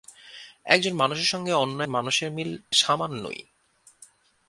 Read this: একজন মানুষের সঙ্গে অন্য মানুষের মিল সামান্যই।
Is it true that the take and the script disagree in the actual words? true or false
false